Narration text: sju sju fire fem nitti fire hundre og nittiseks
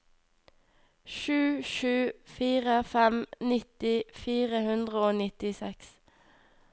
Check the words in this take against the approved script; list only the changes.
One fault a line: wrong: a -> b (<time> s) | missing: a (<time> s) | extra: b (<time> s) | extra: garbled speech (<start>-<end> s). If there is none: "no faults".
no faults